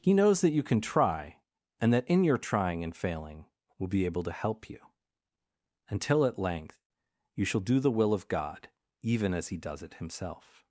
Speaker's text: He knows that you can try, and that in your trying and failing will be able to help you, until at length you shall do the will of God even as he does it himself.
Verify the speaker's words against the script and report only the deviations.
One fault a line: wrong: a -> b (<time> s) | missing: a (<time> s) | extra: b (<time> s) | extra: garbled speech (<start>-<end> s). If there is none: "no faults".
no faults